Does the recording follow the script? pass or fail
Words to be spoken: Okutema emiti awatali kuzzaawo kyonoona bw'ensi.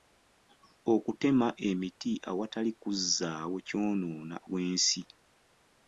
pass